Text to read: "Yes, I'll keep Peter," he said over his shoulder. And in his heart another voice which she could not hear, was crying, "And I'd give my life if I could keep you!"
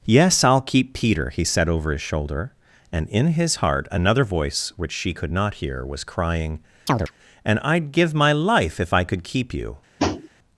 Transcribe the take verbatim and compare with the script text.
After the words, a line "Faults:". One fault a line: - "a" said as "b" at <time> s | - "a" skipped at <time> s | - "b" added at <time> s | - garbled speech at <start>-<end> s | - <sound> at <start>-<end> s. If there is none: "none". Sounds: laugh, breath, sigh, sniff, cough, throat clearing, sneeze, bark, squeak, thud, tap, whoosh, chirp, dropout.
"Yes, I'll keep Peter," he said over his shoulder. And in his heart another voice which she could not hear, was crying, "And I'd give my life if I could keep you!"
Faults:
- chirp at 6.9-7.1 s
- tap at 10.0-10.3 s